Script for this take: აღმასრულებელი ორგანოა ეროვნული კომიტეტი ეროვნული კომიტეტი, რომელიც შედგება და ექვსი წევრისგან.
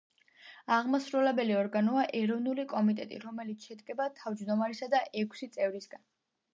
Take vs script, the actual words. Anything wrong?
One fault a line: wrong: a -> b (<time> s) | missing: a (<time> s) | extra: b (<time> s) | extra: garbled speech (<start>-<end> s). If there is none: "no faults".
missing: ეროვნული კომიტეტი (3.2 s)
extra: თავმჯდომარისა (4.2 s)